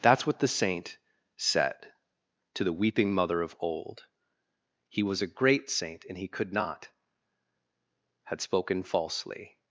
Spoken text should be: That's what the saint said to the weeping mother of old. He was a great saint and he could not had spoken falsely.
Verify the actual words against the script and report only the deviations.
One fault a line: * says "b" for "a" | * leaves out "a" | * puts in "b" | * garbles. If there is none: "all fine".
all fine